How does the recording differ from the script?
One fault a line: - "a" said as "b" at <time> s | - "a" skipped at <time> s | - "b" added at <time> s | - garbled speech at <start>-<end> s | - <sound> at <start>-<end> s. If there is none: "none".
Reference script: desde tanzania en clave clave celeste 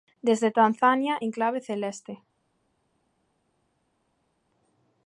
- "clave" skipped at 1.6 s